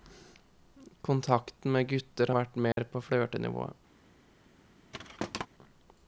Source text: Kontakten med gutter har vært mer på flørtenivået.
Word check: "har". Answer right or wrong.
wrong